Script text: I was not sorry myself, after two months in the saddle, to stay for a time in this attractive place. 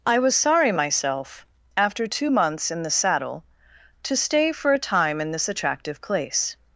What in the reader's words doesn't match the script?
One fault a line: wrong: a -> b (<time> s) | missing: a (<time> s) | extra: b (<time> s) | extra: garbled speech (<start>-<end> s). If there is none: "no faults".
missing: not (0.3 s)